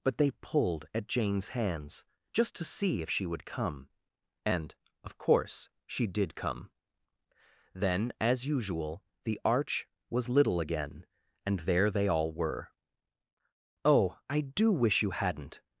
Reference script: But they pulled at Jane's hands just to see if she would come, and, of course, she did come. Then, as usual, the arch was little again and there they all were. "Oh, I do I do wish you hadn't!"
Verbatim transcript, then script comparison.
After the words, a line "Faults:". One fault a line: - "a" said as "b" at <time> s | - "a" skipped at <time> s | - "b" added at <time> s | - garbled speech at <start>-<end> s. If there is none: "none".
But they pulled at Jane's hands just to see if she would come, and, of course, she did come. Then, as usual, the arch was little again and there they all were. "Oh, I do wish you hadn't!"
Faults:
- "I do" skipped at 14.7 s